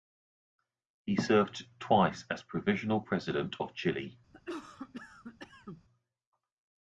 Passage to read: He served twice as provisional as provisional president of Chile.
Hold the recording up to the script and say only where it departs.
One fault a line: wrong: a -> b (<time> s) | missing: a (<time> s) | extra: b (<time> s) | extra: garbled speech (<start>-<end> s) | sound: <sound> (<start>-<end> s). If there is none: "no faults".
missing: as provisional (3.0 s)
sound: cough (4.3-5.8 s)